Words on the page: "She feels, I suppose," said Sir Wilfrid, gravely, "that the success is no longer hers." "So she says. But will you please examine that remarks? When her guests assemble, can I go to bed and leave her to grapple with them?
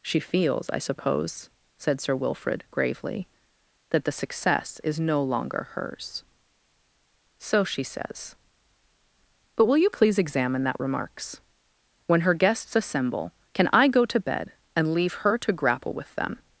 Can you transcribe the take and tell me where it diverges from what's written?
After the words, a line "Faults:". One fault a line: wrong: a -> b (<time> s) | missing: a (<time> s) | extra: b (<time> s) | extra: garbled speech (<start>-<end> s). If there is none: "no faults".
"She feels, I suppose," said Sir Wilfrid, gravely, "that the success is no longer hers." "So she says. But will you please examine that remarks? When her guests assemble, can I go to bed and leave her to grapple with them?
Faults:
no faults